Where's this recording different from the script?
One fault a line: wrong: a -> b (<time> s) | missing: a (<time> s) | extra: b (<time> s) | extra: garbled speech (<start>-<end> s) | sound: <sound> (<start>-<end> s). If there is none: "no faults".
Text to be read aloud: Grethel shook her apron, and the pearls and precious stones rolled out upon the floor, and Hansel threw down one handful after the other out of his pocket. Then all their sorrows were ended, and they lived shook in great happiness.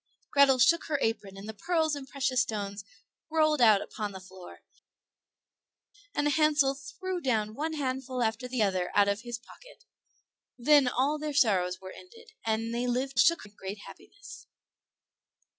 no faults